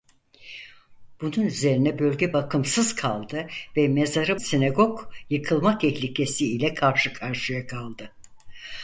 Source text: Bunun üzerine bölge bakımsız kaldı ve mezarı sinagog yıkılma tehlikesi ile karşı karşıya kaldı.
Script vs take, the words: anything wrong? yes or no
no